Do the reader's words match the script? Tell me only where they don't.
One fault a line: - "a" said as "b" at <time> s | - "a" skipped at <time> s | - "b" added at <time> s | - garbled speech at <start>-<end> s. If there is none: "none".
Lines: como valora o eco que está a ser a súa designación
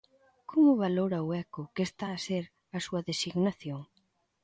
none